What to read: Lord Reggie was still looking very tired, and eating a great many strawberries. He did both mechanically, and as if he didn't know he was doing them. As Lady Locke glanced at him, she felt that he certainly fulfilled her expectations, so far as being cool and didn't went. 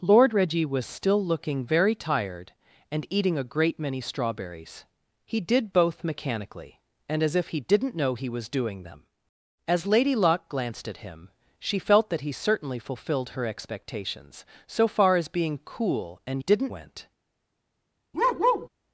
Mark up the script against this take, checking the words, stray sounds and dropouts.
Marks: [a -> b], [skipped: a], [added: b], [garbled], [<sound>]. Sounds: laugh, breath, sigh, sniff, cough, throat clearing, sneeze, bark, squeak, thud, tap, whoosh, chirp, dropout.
Lord Reggie was still looking very tired, and eating a great many strawberries. He did both mechanically, and as if he didn't know he was doing them. As Lady Locke glanced at him, she felt that he certainly fulfilled her expectations, so far as being cool and didn't went. [bark]